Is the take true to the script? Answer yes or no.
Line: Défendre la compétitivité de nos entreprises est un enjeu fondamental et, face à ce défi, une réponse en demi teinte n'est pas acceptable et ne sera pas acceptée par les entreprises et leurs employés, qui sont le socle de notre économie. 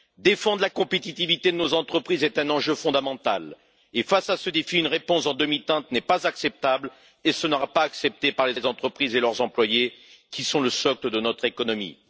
no